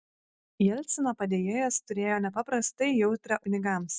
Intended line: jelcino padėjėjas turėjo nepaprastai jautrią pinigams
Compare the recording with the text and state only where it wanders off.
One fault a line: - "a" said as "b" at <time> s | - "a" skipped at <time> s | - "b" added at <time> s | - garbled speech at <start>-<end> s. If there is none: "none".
none